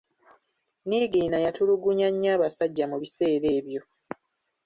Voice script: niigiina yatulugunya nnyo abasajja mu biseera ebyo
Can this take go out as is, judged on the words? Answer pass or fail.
pass